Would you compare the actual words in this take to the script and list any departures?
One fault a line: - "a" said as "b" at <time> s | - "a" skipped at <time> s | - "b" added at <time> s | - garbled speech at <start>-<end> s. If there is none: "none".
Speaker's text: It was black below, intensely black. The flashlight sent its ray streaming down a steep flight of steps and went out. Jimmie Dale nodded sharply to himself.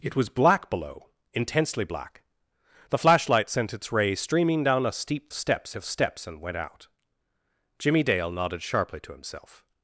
- "flight" said as "steps" at 5.3 s